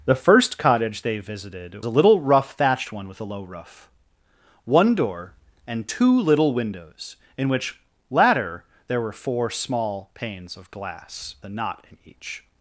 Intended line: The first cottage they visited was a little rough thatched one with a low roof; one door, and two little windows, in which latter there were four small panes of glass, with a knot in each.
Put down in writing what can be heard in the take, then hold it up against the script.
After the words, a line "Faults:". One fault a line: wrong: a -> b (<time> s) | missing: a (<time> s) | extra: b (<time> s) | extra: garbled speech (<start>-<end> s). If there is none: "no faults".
The first cottage they visited a little rough thatched one with a low roof; one door, and two little windows, in which latter there were four small panes of glass, a knot in each.
Faults:
missing: was (1.8 s)
missing: with (11.4 s)